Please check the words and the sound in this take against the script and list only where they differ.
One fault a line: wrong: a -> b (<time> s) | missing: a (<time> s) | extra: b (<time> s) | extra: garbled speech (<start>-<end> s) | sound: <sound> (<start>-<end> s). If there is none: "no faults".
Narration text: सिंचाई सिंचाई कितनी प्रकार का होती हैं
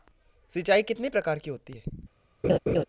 missing: सिंचाई (0.8 s)
wrong: का -> की (1.4 s)
sound: laugh (2.4-2.8 s)